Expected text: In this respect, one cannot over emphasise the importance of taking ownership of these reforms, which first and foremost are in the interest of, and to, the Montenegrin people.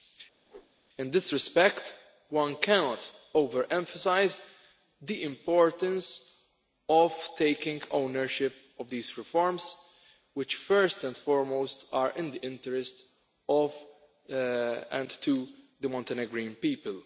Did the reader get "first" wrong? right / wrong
right